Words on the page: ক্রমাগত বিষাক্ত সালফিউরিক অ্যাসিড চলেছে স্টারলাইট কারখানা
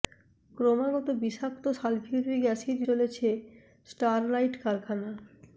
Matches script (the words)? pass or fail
pass